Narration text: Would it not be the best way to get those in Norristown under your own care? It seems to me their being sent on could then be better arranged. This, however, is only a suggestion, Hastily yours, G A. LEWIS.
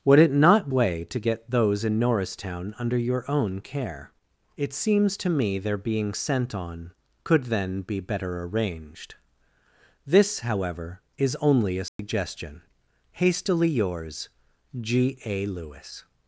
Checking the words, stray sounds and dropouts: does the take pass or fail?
fail